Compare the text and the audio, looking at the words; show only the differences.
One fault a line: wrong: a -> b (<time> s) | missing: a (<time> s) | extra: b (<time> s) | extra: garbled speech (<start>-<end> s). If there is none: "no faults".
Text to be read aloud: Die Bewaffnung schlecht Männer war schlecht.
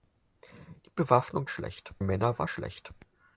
no faults